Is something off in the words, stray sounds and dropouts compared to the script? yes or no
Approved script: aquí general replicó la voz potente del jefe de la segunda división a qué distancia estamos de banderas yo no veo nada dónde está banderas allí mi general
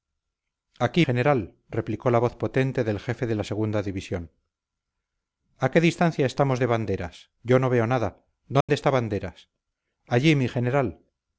yes